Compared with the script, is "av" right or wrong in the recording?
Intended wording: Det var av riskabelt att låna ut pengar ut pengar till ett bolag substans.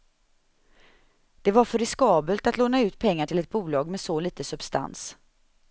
wrong